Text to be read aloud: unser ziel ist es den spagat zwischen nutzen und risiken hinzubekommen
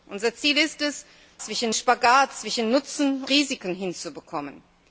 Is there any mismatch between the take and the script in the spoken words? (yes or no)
yes